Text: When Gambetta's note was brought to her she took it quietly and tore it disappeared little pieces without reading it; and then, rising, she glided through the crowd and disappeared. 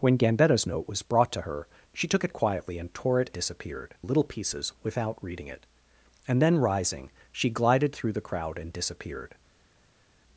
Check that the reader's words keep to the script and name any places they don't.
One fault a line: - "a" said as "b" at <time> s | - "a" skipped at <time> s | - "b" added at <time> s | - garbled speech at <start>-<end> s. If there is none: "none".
none